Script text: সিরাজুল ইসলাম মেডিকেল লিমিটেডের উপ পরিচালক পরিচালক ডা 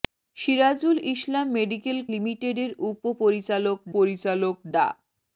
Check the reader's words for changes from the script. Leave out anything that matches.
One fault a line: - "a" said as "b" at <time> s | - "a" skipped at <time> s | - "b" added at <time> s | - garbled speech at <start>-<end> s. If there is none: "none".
none